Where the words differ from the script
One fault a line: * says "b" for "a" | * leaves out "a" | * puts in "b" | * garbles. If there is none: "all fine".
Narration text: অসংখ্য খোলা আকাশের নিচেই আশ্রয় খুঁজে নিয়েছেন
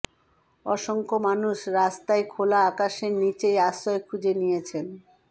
* puts in "মানুষ রাস্তায়"